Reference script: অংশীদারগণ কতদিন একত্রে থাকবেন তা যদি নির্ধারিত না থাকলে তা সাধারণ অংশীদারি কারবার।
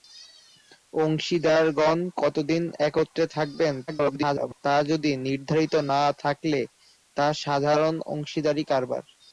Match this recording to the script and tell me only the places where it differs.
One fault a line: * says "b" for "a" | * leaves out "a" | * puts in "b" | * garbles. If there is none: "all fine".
* garbles